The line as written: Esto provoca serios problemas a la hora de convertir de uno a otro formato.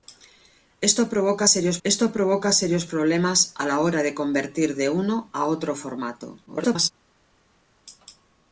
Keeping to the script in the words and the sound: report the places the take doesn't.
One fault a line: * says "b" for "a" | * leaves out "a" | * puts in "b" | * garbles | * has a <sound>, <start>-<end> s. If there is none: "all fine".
* puts in "esto provoca serios"
* garbles